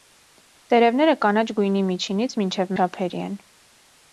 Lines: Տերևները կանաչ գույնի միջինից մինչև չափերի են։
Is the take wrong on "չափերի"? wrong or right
right